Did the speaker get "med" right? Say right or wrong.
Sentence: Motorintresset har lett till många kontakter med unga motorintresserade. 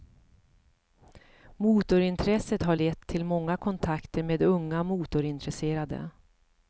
right